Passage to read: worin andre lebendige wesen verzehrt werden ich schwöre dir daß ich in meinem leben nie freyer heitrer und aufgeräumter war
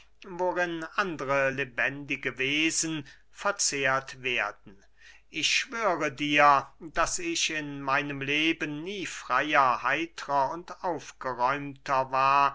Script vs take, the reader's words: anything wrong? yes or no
no